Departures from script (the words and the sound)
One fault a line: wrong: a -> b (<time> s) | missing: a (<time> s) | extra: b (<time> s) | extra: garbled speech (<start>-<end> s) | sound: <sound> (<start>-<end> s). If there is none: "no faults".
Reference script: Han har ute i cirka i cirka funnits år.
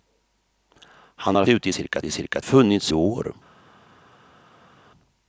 no faults